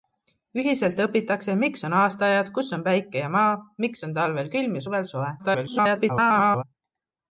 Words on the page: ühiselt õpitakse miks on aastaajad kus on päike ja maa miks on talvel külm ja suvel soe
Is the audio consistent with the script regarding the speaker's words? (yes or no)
no